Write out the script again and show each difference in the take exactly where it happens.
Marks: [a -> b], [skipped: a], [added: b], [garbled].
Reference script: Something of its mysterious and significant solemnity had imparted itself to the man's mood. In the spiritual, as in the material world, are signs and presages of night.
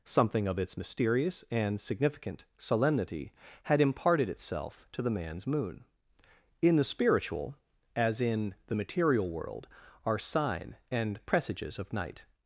Something of its mysterious and significant solemnity had imparted itself to the man's [mood. -> moon] In the spiritual, as in the material world, are [signs -> sign] and presages of night.